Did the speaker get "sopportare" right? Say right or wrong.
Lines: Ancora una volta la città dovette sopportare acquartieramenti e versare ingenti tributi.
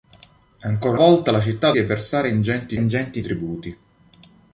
wrong